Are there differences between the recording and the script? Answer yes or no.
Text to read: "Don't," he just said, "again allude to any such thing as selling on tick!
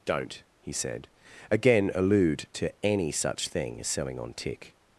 yes